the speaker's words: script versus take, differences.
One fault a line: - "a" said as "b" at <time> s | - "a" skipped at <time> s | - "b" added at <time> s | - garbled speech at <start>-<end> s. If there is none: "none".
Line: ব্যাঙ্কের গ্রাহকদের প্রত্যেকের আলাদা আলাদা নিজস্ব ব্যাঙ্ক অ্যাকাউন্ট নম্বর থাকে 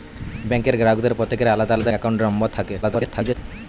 - "নিজস্ব ব্যাঙ্ক" skipped at 1.9 s
- garbled speech at 2.8-3.4 s